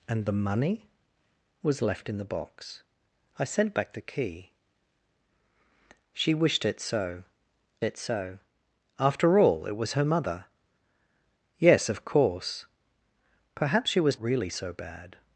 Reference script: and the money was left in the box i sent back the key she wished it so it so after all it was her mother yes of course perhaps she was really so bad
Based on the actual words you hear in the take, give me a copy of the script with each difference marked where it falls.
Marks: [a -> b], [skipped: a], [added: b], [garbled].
and the money was left in the box i sent back the key she wished it so it so after all it was her mother yes of course perhaps she was really so bad